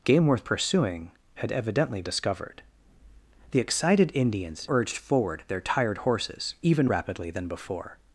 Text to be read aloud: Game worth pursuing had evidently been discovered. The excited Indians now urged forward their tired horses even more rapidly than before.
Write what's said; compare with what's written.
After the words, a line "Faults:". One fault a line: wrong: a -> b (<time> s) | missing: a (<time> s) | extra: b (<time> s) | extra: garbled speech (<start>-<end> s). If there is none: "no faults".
Game worth pursuing had evidently discovered. The excited Indians urged forward their tired horses even rapidly than before.
Faults:
missing: been (2.0 s)
missing: now (4.7 s)
missing: more (6.9 s)